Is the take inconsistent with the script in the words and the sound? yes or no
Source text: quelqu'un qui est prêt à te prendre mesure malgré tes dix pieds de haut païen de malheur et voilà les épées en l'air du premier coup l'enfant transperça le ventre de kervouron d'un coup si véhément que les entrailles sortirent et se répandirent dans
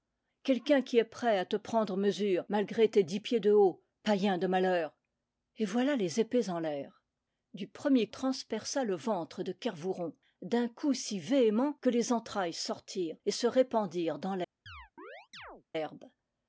yes